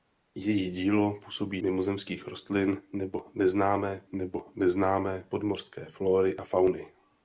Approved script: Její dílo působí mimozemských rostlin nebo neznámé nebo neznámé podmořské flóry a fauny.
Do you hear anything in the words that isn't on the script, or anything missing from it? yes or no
no